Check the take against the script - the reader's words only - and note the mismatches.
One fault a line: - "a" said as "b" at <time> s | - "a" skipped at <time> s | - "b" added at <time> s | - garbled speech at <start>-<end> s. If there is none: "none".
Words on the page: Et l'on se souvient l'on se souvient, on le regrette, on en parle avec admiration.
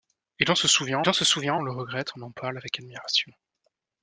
none